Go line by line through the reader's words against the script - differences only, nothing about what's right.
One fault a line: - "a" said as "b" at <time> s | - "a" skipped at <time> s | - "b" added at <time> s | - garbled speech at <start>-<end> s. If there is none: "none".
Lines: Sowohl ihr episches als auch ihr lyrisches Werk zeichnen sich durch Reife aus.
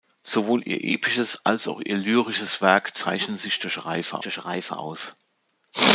- "durch Reife" added at 4.2 s